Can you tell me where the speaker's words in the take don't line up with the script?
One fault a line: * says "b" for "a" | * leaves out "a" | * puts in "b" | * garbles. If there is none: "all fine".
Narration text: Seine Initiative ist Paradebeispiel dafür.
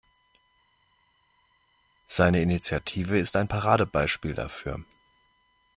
* puts in "ein"